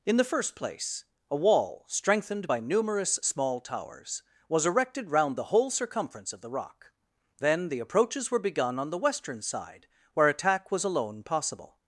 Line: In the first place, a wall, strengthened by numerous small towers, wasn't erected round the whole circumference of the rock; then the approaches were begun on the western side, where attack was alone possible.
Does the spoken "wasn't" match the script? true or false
false